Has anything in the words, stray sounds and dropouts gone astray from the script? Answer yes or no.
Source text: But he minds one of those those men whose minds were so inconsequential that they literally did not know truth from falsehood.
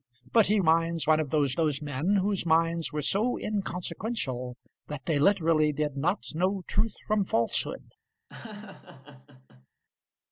yes